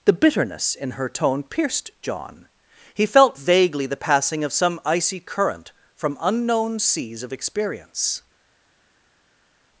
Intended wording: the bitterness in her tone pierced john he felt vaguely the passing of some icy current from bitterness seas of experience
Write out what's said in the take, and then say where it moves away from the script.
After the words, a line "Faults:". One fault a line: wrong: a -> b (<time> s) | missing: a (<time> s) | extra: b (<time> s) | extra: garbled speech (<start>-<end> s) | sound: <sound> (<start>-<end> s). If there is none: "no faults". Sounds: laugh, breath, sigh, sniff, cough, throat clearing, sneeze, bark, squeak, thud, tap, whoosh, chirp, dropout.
the bitterness in her tone pierced john he felt vaguely the passing of some icy current from unknown seas of experience
Faults:
wrong: bitterness -> unknown (6.2 s)